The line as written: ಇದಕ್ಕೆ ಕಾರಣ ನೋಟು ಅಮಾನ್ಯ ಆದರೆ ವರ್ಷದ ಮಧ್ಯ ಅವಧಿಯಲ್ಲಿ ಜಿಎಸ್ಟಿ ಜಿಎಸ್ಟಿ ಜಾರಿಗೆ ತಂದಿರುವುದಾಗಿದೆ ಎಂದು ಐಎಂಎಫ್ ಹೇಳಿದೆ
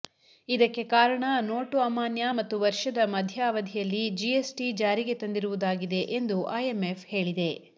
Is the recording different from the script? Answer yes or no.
yes